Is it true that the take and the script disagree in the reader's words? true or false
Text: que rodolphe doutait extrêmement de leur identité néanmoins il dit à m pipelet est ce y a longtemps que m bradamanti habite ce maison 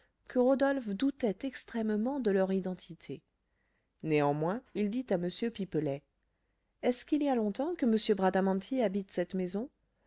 true